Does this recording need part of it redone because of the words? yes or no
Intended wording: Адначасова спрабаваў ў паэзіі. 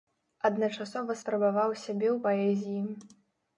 yes